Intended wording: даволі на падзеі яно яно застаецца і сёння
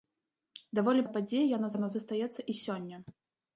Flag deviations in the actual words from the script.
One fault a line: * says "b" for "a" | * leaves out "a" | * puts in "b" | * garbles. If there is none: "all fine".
all fine